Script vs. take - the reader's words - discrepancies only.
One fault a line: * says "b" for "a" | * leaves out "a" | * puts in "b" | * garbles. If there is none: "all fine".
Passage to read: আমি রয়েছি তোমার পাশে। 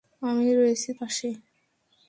* leaves out "তোমার"